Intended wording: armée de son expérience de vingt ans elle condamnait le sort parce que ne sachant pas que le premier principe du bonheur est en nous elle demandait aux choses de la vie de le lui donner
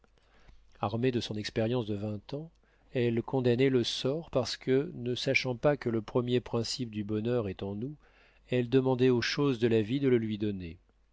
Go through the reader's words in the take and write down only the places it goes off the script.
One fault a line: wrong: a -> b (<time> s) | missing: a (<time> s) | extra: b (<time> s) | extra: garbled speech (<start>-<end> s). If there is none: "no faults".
no faults